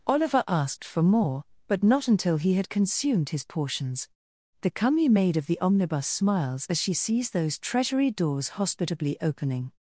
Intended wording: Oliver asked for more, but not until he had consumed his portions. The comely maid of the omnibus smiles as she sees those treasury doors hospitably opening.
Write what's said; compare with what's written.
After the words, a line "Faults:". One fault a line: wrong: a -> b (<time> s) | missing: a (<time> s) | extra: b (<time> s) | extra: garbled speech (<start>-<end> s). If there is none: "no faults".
Oliver asked for more, but not until he had consumed his portions. The comely maid of the omnibus smiles as she sees those treasury doors hospitably opening.
Faults:
no faults